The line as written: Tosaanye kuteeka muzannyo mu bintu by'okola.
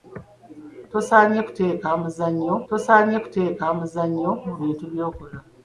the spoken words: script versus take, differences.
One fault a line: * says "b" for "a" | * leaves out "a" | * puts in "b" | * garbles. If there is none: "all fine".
* puts in "tosaanye kuteeka muzannyo"